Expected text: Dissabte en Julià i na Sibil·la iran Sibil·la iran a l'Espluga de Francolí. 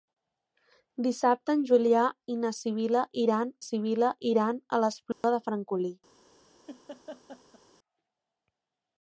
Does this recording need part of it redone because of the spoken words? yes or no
no